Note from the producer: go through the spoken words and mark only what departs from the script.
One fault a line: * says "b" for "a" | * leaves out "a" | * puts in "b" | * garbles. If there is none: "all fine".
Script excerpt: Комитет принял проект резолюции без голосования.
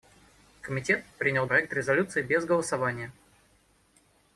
all fine